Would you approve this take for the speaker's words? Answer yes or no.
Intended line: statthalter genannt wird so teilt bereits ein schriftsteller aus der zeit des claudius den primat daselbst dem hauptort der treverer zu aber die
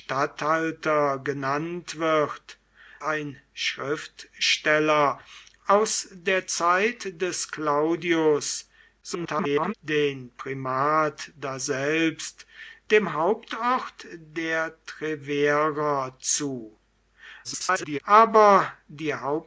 no